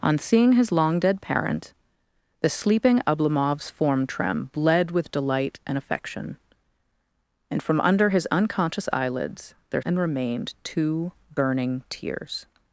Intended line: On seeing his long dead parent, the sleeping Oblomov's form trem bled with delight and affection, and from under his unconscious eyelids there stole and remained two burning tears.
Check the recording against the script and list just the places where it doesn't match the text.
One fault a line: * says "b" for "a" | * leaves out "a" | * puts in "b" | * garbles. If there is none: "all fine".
* leaves out "stole"